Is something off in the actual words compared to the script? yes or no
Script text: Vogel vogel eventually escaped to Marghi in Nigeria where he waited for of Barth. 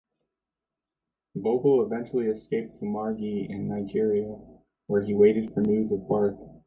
yes